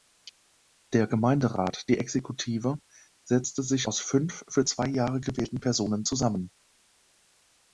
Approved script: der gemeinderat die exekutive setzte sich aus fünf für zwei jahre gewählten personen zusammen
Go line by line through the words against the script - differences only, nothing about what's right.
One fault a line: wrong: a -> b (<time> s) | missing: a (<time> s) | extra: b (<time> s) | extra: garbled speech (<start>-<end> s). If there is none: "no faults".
no faults